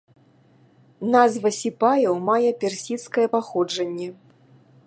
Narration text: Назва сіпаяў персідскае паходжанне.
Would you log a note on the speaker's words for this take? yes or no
yes